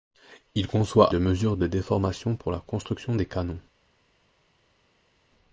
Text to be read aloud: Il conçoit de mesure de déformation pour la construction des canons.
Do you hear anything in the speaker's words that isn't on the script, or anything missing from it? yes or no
no